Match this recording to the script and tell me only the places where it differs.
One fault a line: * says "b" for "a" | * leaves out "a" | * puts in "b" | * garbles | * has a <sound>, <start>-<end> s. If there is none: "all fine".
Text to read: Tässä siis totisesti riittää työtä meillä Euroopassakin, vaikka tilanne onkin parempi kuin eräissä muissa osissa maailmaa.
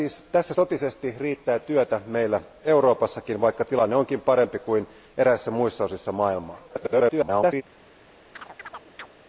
* leaves out "siis"
* garbles
* has a chirp, 8.3-9.1 s